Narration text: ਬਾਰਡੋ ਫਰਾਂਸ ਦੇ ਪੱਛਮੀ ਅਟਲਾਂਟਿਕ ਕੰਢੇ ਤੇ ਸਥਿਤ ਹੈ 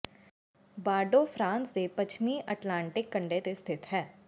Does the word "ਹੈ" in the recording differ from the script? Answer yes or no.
no